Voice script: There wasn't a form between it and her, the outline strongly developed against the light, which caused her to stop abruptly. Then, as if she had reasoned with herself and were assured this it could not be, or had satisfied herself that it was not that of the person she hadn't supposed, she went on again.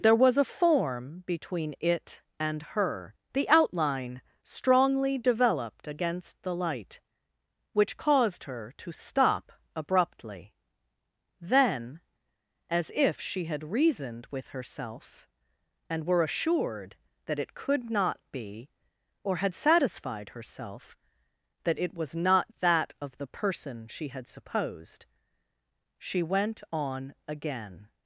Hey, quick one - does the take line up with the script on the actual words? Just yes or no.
no